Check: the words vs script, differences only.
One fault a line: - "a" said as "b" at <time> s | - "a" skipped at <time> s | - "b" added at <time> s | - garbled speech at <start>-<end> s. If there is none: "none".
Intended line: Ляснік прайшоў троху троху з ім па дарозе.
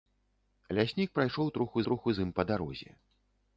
none